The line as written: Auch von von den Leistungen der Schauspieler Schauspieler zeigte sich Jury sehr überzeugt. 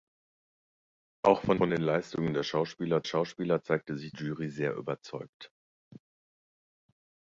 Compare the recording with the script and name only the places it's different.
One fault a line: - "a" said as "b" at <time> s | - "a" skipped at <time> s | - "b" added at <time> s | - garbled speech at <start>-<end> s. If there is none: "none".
none